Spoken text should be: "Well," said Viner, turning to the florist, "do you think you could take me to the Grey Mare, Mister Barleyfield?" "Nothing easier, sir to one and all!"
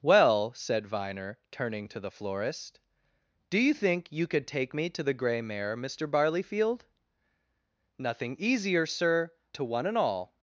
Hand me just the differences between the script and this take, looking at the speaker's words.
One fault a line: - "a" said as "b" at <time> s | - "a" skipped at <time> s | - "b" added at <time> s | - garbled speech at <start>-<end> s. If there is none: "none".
none